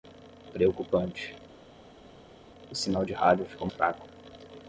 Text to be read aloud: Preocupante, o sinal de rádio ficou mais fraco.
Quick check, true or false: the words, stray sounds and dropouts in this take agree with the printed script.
false